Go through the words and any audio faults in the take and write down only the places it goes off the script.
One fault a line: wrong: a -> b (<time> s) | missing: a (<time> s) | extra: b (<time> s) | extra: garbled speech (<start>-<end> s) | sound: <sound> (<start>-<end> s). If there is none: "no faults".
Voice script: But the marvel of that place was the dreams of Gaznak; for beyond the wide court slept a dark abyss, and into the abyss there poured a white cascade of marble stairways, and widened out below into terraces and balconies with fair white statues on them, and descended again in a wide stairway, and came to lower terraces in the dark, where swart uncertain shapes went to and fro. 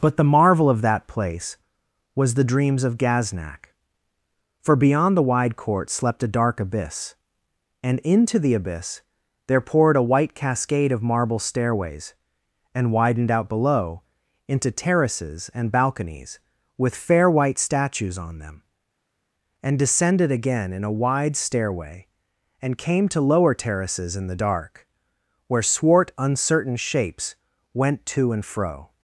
no faults